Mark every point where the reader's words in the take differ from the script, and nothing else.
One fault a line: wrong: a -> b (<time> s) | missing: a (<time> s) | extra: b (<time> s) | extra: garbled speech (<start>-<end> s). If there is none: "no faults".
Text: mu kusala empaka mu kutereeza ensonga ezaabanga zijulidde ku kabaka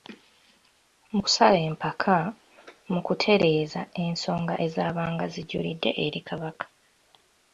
wrong: ku -> eri (6.0 s)